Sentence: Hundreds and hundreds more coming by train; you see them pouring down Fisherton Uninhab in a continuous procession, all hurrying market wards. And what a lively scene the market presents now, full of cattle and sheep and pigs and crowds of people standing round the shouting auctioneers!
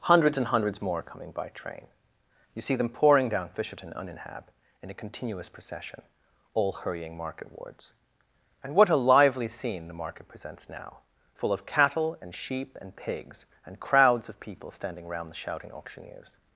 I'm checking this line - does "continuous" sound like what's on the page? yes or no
yes